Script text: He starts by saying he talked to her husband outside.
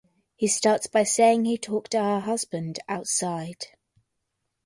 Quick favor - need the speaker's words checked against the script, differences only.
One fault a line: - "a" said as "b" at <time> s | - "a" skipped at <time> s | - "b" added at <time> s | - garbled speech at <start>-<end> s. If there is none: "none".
none